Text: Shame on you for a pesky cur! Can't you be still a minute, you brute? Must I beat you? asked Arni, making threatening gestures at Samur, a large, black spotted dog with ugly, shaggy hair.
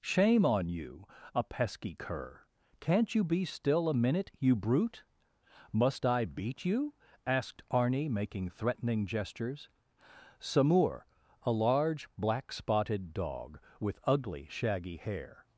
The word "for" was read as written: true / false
false